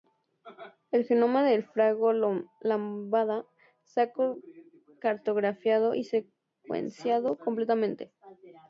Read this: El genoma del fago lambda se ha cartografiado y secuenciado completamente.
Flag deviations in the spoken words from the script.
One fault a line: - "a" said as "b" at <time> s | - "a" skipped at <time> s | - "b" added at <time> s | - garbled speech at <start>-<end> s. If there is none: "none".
none